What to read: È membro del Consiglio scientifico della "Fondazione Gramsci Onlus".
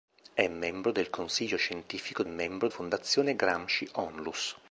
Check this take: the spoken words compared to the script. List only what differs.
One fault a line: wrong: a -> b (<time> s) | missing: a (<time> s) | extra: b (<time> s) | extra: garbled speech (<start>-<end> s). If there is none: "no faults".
wrong: della -> membro (2.2 s)